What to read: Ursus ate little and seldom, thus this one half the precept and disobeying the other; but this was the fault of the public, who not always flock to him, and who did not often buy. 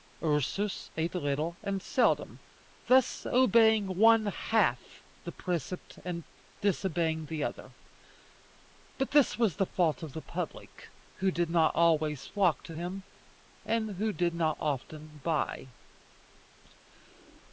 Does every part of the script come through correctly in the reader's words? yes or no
no